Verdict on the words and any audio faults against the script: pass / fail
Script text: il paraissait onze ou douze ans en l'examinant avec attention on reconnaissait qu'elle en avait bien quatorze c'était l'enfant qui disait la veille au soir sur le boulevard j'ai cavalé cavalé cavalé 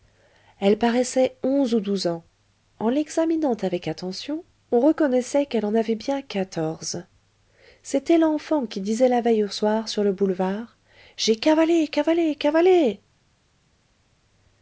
fail